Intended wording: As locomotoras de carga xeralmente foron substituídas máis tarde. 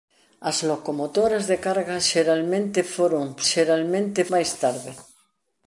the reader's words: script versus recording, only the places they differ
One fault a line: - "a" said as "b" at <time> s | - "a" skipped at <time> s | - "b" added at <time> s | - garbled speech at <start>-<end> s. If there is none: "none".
- "substituídas" said as "xeralmente" at 3.5 s